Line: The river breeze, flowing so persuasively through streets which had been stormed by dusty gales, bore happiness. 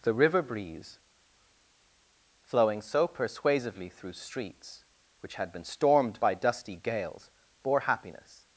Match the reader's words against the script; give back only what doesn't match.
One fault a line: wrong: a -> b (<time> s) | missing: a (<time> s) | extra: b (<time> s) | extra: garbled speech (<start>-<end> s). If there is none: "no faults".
no faults